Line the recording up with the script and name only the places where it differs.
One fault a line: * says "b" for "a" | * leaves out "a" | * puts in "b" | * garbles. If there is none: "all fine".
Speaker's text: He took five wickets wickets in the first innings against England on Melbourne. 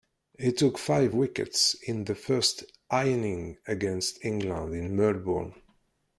* leaves out "wickets"
* says "in" for "on"